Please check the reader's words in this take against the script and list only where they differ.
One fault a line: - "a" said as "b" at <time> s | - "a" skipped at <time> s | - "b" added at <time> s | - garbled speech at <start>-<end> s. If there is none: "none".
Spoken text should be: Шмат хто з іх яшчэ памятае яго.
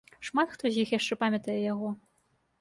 none